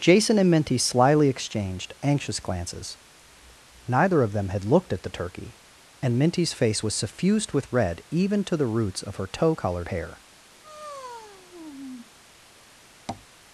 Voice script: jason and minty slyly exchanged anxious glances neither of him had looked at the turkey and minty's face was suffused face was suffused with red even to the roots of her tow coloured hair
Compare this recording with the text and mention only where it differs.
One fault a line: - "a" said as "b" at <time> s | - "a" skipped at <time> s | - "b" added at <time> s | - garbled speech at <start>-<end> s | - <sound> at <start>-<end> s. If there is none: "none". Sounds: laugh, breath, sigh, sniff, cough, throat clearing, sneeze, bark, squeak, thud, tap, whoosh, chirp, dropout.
- "him" said as "them" at 4.3 s
- "face was suffused" skipped at 7.5 s
- sigh at 10.6-12.1 s
- tap at 13.1-13.3 s